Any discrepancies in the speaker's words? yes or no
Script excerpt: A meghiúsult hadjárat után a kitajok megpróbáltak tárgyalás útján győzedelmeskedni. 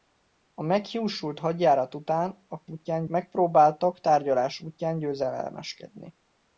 yes